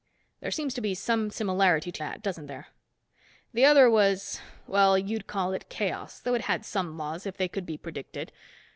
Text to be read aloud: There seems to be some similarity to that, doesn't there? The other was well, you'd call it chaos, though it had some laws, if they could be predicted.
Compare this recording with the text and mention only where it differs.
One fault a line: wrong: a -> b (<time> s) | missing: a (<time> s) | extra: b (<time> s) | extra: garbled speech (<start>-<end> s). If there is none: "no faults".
no faults